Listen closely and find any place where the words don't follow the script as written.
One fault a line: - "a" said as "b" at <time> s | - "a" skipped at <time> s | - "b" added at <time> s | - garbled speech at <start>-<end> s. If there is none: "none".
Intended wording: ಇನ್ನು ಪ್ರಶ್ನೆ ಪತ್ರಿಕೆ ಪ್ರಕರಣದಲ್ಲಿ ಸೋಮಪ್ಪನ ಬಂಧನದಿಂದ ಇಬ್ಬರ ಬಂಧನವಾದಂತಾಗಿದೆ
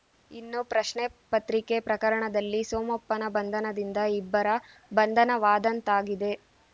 none